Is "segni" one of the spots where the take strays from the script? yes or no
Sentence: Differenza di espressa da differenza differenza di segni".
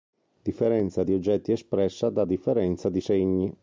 no